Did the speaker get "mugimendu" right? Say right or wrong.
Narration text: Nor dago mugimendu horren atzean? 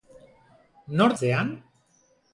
wrong